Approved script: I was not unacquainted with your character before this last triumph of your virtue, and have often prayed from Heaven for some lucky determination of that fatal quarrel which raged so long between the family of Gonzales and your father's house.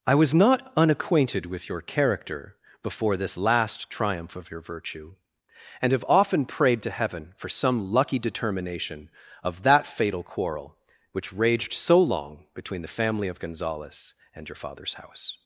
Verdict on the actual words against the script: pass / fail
fail